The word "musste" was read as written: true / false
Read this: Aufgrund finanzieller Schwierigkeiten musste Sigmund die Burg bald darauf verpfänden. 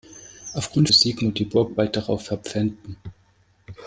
false